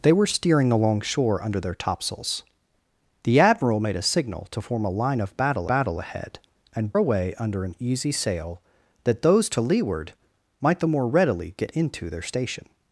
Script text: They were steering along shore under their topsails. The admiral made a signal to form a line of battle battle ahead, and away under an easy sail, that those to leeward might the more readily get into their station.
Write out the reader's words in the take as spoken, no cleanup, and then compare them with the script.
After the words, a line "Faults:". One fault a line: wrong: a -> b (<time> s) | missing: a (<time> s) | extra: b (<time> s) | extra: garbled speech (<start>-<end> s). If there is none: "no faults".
They were steering along shore under their topsails. The admiral made a signal to form a line of battle battle ahead, and away under an easy sail, that those to leeward might the more readily get into their station.
Faults:
no faults